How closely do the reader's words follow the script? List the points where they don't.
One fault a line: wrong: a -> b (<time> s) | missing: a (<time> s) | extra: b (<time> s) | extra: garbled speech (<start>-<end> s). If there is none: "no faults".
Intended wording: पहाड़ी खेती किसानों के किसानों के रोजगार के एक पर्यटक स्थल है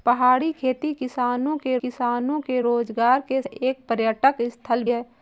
no faults